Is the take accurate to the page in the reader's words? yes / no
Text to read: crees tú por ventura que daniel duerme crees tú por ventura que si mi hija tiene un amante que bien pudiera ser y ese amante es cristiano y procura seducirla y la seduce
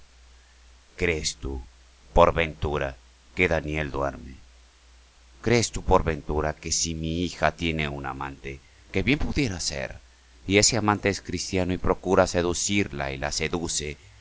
yes